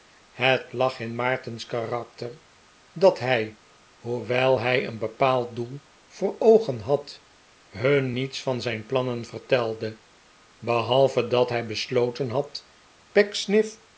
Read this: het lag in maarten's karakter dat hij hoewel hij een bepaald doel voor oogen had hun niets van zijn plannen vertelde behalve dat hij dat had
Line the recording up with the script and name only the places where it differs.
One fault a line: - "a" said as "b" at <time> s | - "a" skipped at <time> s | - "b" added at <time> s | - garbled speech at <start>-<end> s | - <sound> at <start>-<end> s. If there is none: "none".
- "dat" said as "besloten" at 11.6 s